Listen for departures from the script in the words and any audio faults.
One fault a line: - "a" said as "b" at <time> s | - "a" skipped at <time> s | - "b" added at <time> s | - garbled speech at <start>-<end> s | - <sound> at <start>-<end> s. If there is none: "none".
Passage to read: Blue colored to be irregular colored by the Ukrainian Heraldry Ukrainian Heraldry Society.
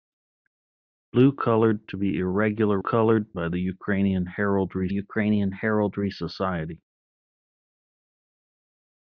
none